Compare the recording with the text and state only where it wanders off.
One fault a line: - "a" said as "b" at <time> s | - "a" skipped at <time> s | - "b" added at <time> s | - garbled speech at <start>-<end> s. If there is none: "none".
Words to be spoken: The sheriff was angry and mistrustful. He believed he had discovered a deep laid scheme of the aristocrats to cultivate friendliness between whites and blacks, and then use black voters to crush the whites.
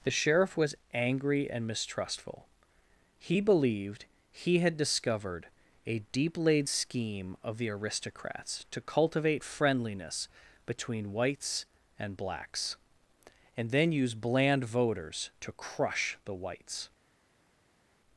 - "black" said as "bland" at 14.1 s